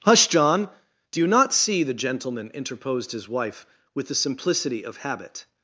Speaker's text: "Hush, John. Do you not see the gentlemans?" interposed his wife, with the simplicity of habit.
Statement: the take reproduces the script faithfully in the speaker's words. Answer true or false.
false